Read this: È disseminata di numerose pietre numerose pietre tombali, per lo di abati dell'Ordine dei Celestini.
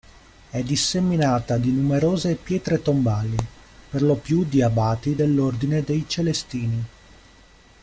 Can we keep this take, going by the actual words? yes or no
no